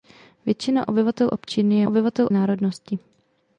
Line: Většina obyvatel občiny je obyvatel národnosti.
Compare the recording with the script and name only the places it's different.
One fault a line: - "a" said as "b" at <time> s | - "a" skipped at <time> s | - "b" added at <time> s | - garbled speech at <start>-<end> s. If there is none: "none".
none